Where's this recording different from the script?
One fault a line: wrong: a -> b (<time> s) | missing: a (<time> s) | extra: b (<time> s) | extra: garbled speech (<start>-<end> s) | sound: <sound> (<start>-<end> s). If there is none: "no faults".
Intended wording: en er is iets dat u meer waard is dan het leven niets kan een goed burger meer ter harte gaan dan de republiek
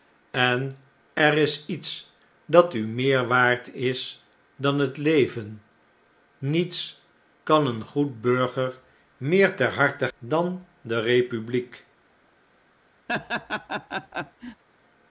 missing: gaan (10.1 s)
sound: laugh (13.1-14.6 s)